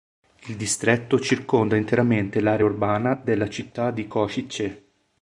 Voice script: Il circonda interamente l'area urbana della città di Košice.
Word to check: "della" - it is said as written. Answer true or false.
true